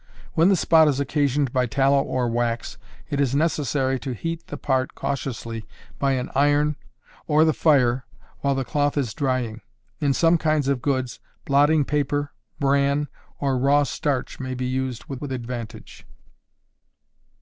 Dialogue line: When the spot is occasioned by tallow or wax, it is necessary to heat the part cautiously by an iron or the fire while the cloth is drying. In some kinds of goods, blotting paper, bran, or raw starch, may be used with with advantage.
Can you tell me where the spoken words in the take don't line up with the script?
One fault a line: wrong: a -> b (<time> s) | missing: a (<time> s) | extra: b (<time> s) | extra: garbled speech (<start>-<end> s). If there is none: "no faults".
no faults